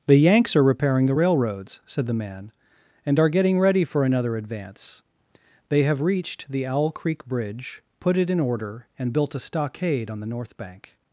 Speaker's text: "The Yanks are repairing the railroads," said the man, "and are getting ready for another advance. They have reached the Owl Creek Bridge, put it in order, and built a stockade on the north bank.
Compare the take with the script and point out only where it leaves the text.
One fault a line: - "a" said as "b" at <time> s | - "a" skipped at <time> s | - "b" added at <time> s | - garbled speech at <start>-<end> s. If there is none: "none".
none